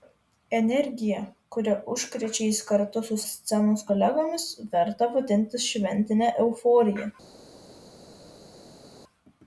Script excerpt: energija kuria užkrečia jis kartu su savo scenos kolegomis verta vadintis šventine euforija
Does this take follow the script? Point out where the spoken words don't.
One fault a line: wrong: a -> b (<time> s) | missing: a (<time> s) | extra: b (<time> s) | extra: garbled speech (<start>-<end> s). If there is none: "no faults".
missing: savo (3.2 s)